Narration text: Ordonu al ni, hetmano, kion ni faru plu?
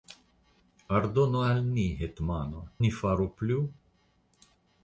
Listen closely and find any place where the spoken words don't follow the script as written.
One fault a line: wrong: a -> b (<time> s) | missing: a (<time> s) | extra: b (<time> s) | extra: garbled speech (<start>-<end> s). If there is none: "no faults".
missing: kion (2.6 s)